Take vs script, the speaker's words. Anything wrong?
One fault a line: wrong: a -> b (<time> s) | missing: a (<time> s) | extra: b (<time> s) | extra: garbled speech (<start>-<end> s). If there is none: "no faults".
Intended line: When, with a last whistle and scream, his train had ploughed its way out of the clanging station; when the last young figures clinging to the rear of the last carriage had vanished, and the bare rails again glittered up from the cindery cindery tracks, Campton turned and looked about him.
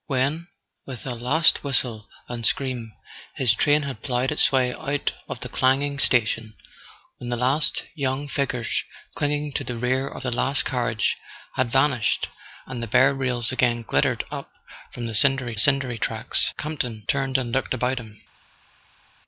no faults